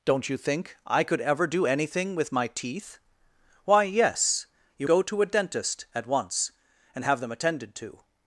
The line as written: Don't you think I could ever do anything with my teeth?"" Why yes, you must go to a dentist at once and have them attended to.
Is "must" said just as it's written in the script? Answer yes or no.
no